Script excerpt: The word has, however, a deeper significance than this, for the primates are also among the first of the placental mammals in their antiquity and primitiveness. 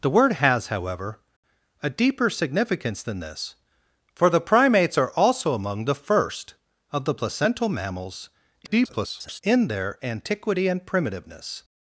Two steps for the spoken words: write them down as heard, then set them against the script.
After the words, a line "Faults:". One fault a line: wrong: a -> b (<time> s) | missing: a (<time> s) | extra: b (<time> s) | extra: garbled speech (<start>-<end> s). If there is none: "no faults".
The word has, however, a deeper significance than this, for the primates are also among the first of the placental mammals [garbled] in their antiquity and primitiveness.
Faults:
extra: garbled speech (8.6-9.4 s)